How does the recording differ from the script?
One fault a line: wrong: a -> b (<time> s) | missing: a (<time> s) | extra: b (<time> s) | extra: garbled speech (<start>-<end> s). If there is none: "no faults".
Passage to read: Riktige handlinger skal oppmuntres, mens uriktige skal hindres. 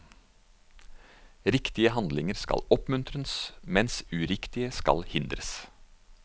no faults